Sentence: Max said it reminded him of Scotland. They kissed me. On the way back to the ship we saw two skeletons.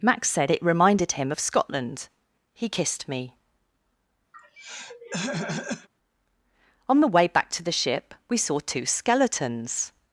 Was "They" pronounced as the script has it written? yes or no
no